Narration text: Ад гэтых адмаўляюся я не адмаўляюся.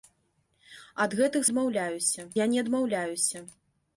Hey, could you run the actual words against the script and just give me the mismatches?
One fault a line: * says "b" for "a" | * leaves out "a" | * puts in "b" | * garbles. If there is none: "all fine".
all fine